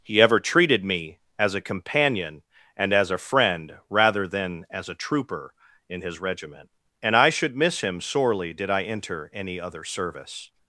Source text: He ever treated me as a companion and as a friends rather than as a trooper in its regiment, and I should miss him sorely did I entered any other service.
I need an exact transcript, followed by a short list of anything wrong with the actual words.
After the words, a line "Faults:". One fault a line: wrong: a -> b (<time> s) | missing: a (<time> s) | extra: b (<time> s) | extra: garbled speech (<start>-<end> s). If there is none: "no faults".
He ever treated me as a companion and as a friend rather than as a trooper in his regiment, and I should miss him sorely did I enter any other service.
Faults:
wrong: friends -> friend (3.2 s)
wrong: its -> his (6.0 s)
wrong: entered -> enter (8.8 s)